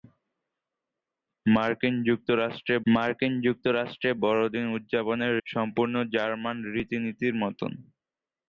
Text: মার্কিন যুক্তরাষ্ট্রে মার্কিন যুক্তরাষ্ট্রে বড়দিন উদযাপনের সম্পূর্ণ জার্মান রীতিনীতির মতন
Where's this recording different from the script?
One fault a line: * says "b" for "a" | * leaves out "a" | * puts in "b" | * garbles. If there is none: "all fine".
all fine